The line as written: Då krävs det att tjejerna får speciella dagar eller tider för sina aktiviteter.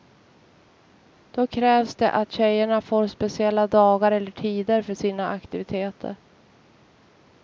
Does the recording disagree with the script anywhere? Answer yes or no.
no